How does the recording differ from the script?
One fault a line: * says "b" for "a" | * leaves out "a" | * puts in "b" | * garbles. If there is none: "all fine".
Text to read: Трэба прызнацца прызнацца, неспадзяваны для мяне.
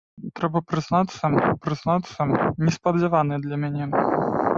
all fine